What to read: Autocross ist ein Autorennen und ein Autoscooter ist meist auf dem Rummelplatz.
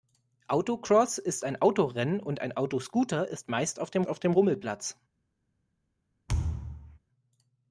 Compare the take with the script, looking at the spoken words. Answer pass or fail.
fail